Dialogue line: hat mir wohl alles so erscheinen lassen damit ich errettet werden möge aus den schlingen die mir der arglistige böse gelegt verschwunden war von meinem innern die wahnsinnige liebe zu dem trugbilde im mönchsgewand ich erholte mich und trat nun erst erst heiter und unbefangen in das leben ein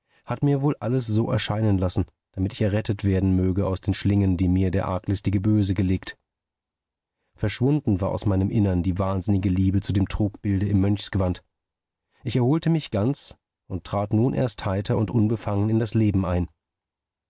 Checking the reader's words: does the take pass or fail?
fail